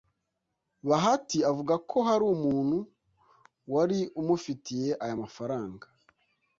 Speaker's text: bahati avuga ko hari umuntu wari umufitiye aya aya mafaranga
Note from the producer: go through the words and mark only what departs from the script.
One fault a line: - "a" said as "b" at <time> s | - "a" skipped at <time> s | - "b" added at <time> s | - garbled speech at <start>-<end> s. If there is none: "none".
- "aya" skipped at 5.2 s